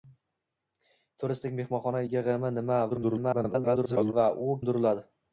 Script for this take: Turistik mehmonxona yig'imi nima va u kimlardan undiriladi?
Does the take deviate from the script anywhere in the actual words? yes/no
yes